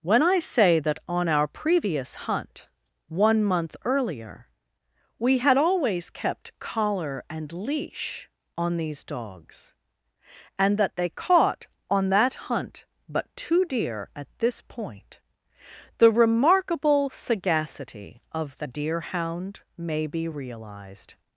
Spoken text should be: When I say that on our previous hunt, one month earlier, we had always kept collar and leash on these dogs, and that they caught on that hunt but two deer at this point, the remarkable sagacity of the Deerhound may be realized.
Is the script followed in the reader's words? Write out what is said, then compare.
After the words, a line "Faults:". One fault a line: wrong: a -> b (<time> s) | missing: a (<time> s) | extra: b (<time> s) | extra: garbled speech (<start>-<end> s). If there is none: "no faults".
When I say that on our previous hunt, one month earlier, we had always kept collar and leash on these dogs, and that they caught on that hunt but two deer at this point, the remarkable sagacity of the Deerhound may be realized.
Faults:
no faults